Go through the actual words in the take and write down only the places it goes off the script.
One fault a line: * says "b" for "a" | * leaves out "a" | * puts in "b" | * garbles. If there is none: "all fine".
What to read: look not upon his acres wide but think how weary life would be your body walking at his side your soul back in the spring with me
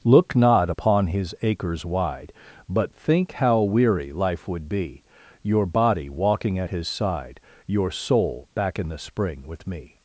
all fine